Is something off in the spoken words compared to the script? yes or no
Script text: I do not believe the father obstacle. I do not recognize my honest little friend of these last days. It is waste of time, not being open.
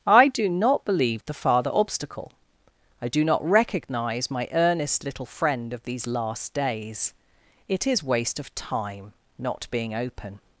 yes